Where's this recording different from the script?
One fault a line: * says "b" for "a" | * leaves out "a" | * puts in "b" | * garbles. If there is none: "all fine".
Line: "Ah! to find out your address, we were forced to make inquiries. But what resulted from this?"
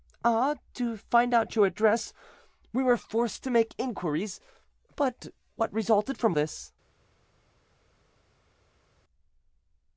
all fine